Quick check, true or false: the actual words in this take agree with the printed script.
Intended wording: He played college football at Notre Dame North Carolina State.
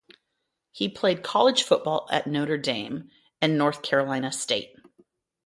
false